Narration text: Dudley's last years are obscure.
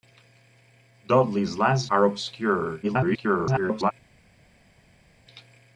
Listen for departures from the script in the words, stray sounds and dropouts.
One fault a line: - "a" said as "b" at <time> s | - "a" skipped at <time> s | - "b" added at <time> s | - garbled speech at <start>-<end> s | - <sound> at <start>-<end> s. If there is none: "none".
- "years" skipped at 1.9 s
- garbled speech at 2.8-3.9 s